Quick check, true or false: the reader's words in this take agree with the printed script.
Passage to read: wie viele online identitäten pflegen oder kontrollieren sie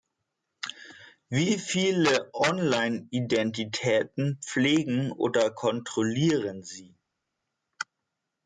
true